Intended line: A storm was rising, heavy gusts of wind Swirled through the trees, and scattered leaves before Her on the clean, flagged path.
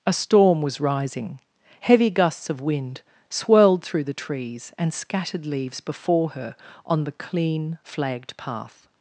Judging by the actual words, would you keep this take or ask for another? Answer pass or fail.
pass